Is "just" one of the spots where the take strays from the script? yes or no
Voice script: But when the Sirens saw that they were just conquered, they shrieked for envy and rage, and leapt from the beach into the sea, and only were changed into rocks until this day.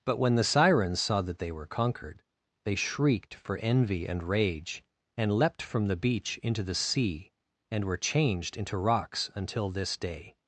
yes